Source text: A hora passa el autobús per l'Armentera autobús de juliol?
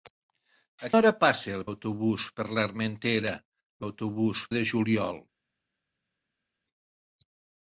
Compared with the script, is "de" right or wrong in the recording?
right